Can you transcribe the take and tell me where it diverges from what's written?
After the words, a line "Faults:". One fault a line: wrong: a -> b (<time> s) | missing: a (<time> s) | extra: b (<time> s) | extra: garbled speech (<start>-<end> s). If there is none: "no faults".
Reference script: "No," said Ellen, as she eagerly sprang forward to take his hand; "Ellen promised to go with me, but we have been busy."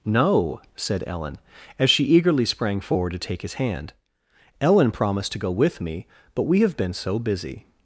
"No," said Ellen, as she eagerly sprang forward to take his hand; "Ellen promised to go with me, but we have been so busy."
Faults:
extra: so (6.9 s)